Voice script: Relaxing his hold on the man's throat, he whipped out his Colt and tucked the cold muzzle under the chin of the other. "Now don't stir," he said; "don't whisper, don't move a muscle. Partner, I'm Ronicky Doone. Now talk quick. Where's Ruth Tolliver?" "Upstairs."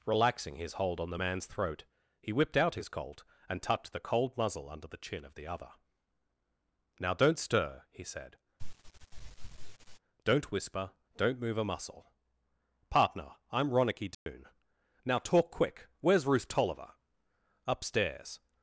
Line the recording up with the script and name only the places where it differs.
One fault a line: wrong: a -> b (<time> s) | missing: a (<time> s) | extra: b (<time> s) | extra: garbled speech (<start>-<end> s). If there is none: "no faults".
no faults